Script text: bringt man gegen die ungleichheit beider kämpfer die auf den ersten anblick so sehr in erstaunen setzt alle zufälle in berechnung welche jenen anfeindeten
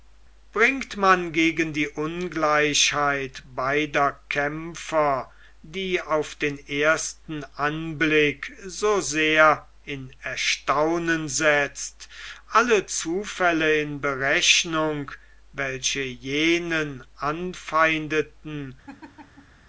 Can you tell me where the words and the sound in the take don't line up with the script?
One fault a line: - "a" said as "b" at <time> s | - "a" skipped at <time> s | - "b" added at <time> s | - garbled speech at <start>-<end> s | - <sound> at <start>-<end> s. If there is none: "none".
- laugh at 18.9-19.6 s